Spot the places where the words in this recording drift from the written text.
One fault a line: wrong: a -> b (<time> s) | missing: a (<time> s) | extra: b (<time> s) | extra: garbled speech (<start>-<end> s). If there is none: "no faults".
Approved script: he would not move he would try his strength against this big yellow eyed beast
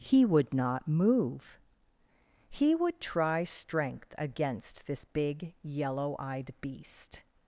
missing: his (3.4 s)